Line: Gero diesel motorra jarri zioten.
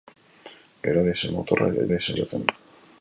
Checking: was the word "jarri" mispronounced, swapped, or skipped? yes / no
yes